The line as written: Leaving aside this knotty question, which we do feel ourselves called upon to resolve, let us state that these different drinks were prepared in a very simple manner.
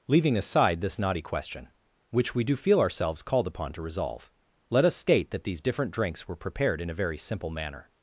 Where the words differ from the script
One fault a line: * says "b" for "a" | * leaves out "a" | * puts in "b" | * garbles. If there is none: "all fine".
all fine